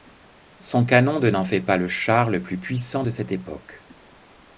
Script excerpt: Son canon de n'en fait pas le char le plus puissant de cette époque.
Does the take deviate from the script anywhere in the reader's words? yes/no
no